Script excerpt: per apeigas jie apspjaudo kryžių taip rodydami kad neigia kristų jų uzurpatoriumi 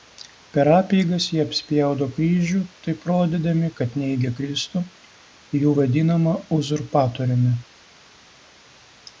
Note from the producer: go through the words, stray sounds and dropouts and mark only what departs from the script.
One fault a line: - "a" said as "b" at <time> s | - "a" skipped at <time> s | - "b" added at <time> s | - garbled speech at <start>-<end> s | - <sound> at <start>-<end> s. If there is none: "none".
- "vadinamą" added at 5.8 s